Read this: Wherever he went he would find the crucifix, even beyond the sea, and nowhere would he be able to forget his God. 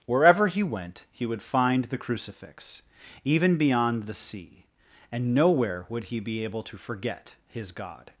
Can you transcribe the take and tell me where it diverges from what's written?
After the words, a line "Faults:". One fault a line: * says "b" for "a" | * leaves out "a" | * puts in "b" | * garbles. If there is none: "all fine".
Wherever he went he would find the crucifix, even beyond the sea, and nowhere would he be able to forget his God.
Faults:
all fine